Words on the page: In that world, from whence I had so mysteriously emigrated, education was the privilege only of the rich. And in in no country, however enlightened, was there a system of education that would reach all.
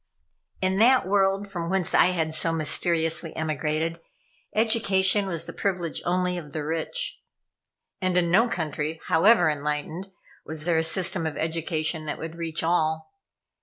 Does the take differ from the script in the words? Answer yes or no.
yes